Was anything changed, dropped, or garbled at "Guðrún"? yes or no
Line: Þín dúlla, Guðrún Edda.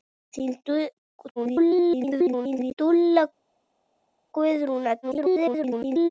no